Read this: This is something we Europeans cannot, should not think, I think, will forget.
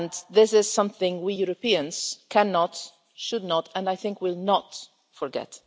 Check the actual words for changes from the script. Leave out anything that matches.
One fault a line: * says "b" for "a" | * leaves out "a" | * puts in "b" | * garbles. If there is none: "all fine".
* says "and" for "think"
* puts in "not"